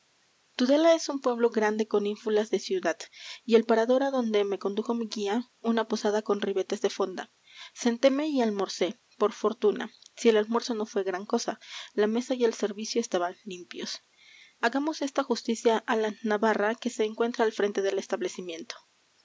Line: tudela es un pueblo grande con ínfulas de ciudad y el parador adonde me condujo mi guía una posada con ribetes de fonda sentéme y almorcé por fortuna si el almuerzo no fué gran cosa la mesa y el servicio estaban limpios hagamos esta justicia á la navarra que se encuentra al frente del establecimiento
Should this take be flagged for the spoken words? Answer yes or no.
no